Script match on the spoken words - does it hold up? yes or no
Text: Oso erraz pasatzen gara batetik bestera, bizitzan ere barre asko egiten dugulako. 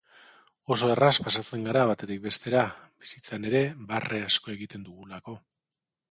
yes